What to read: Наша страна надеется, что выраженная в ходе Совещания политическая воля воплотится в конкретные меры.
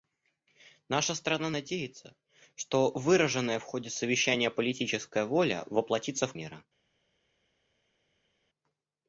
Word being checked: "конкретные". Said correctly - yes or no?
no